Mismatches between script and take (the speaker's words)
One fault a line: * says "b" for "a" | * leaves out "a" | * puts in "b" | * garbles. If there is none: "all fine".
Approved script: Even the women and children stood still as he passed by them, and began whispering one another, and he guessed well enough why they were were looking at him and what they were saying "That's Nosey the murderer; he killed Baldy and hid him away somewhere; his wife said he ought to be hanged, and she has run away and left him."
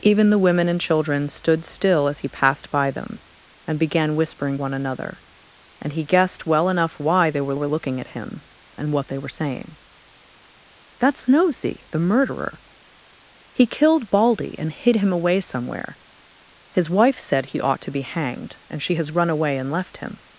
all fine